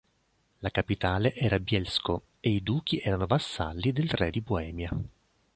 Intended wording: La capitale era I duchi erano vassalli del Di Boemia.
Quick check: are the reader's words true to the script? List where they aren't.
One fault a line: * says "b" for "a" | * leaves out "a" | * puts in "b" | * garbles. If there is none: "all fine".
* puts in "Bielsko e"
* puts in "Re"